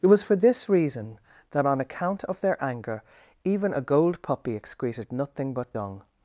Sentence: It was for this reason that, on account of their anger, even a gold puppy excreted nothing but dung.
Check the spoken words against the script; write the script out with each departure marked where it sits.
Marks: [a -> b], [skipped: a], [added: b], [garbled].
It was for this reason that, on account of their anger, even a gold puppy excreted nothing but dung.